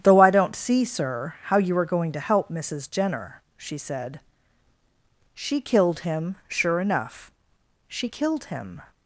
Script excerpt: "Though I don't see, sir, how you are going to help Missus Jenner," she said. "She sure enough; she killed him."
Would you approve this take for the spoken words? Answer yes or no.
no